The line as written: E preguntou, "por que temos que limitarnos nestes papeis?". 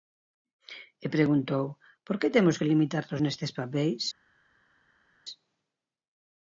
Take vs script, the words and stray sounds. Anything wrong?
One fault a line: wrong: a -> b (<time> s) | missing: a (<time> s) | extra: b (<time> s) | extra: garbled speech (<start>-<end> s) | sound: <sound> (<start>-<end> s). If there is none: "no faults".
no faults